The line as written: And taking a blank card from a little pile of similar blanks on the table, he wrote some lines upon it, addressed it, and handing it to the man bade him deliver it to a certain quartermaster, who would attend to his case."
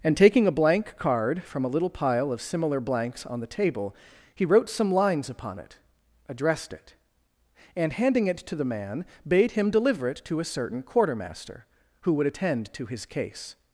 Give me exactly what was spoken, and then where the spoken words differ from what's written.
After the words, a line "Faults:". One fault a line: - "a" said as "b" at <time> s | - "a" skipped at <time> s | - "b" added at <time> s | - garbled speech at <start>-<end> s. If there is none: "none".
And taking a blank card from a little pile of similar blanks on the table, he wrote some lines upon it, addressed it, and handing it to the man bade him deliver it to a certain quartermaster, who would attend to his case."
Faults:
none